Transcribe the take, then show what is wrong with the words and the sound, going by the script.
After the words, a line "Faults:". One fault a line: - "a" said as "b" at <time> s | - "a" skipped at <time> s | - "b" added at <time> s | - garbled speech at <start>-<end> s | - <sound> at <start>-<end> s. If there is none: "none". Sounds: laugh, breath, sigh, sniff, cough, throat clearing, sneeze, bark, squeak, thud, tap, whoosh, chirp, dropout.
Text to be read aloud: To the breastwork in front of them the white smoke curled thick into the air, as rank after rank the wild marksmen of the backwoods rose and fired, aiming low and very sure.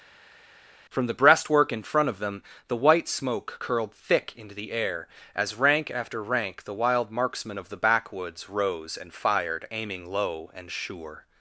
From the breastwork in front of them the white smoke curled thick into the air, as rank after rank the wild marksmen of the backwoods rose and fired, aiming low and sure.
Faults:
- "To" said as "From" at 0.9 s
- "very" skipped at 10.7 s